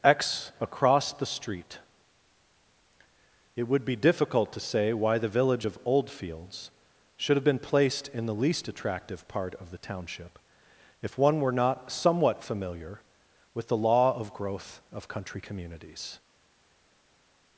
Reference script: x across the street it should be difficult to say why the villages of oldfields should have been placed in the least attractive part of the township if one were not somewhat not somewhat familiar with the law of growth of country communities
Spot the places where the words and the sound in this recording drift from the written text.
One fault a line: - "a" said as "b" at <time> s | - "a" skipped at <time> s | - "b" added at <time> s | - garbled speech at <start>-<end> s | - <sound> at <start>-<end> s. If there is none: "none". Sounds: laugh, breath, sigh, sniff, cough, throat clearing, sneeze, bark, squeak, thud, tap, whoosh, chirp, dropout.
- "should" said as "would" at 3.7 s
- "villages" said as "village" at 5.3 s
- "not somewhat" skipped at 12.4 s